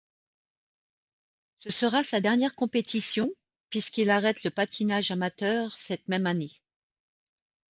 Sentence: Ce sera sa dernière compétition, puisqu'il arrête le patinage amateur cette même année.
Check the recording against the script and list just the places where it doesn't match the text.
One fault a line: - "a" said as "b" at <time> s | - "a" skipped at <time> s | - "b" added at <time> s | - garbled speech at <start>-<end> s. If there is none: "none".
none